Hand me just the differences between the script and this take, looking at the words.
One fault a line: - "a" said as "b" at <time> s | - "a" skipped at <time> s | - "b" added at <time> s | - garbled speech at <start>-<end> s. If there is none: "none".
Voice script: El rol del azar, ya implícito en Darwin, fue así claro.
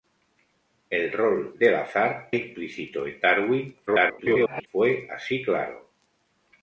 - "ya" skipped at 2.3 s
- garbled speech at 3.9-4.7 s